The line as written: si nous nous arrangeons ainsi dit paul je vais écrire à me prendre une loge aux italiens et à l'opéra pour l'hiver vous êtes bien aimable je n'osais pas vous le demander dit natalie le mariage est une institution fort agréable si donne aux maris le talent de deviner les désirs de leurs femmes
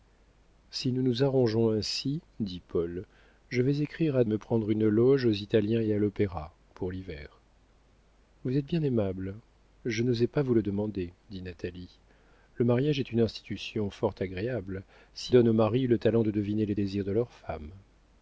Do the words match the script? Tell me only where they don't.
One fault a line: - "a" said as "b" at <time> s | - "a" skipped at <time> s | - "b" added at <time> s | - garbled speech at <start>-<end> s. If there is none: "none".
none